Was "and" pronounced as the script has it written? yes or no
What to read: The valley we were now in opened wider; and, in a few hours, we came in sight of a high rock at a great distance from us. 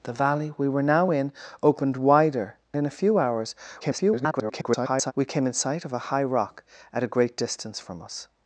no